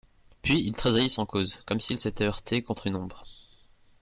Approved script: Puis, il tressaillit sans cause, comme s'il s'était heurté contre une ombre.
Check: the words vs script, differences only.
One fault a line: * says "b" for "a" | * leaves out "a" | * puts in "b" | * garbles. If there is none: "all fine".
all fine